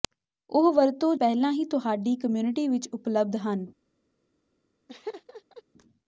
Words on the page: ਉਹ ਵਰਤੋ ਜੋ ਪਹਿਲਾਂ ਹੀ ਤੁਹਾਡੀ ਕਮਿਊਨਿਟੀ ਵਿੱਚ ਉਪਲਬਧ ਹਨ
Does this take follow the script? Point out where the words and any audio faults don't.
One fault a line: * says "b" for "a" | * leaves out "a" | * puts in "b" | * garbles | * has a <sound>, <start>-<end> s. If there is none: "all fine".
* leaves out "ਜੋ"
* has a laugh, 4.9-5.6 s